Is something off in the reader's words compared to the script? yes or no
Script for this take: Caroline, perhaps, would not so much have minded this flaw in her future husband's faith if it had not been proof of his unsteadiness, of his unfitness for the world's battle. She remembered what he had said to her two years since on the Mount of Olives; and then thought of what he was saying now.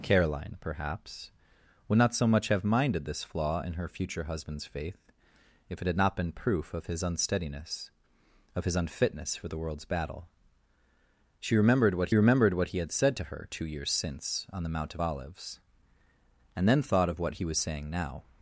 yes